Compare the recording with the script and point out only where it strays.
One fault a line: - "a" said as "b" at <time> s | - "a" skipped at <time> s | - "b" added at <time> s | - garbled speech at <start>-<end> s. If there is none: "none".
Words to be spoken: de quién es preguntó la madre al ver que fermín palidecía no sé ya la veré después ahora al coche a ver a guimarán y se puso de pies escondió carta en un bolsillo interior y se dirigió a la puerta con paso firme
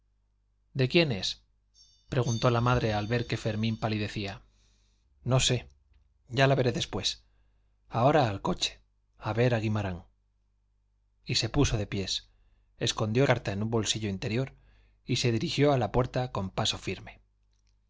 none